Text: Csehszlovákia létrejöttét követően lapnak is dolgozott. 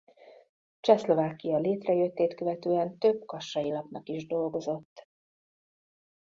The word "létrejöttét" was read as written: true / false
true